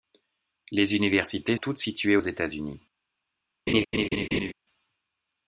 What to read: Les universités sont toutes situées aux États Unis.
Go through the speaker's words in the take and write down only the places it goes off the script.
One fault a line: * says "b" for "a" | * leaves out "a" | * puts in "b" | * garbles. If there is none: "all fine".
* leaves out "sont"